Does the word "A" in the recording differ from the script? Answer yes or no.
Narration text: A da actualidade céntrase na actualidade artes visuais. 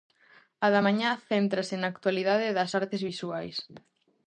no